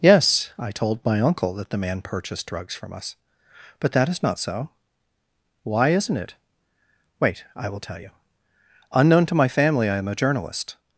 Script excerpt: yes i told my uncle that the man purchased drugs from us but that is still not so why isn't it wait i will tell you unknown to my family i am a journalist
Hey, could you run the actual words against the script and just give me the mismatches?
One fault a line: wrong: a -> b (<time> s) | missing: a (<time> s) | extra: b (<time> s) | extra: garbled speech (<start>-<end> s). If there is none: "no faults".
missing: still (4.2 s)